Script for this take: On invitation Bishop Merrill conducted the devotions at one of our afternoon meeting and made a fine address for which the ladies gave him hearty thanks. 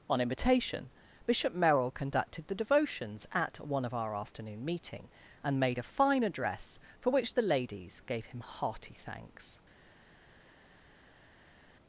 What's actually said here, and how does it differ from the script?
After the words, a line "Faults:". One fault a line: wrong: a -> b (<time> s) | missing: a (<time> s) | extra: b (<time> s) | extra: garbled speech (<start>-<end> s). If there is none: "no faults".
On invitation Bishop Merrill conducted the devotions at one of our afternoon meeting and made a fine address for which the ladies gave him hearty thanks.
Faults:
no faults